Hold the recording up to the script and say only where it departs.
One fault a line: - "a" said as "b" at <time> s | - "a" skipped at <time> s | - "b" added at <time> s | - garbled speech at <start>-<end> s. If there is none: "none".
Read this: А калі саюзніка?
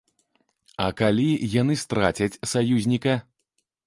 - "яны страцяць" added at 1.6 s